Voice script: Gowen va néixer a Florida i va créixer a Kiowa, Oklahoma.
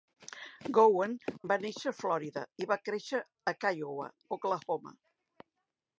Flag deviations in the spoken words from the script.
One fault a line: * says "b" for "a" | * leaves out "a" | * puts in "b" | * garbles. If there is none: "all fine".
all fine